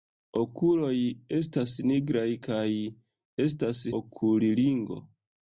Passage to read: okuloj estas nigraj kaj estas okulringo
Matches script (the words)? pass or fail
pass